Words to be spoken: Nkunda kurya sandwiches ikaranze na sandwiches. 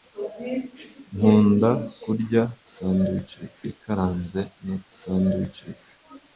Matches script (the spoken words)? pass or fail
pass